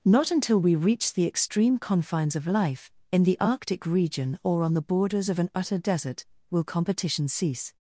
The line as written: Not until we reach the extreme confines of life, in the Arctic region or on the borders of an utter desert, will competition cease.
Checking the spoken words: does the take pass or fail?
pass